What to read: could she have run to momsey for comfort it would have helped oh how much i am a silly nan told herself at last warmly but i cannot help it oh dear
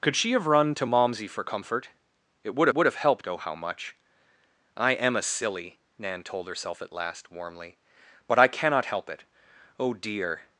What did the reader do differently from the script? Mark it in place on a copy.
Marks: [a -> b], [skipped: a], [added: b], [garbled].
could she have run to momsey for comfort it would [added: would] have helped oh how much i am a silly nan told herself at last warmly but i cannot help it oh dear